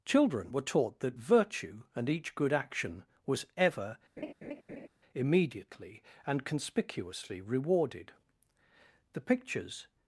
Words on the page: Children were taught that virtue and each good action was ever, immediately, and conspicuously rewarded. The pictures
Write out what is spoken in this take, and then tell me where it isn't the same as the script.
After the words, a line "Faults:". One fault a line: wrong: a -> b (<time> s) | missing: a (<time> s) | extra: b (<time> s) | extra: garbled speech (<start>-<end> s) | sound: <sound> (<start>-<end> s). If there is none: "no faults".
Children were taught that virtue and each good action was ever, immediately, and conspicuously rewarded. The pictures
Faults:
sound: laugh (4.2-4.9 s)